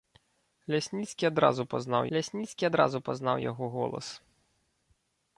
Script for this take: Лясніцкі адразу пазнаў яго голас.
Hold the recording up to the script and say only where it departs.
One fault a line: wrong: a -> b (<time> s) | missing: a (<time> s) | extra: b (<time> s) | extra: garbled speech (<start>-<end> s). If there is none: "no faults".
extra: лясніцкі адразу пазнаў (2.2 s)